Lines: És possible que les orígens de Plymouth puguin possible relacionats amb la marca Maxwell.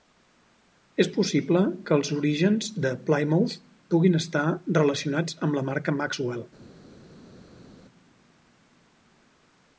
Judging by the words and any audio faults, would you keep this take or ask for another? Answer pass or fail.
fail